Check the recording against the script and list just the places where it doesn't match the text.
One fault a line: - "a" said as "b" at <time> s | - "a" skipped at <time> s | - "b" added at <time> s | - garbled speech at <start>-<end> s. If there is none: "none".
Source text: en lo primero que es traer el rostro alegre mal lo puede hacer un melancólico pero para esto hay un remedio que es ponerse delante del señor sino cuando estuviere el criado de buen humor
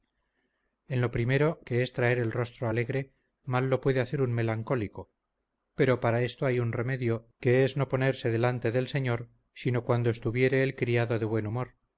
- "no" added at 7.8 s